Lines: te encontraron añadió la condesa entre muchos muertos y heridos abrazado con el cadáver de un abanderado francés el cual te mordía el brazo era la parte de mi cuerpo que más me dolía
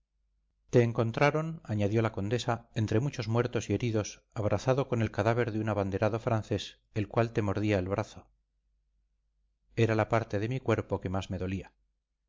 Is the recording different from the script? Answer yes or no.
no